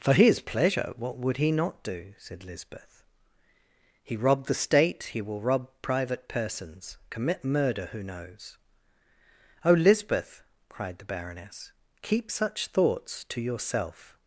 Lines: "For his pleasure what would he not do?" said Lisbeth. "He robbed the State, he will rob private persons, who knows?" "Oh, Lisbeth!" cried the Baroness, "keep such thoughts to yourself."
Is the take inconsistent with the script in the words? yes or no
yes